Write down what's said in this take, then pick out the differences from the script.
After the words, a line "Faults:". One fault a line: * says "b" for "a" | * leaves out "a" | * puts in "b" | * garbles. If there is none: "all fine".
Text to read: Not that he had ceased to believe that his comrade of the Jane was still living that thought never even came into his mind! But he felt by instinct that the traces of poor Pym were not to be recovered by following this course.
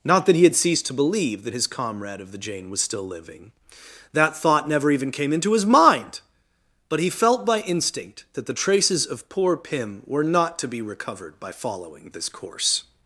Not that he had ceased to believe that his comrade of the Jane was still living that thought never even came into his mind! But he felt by instinct that the traces of poor Pym were not to be recovered by following this course.
Faults:
all fine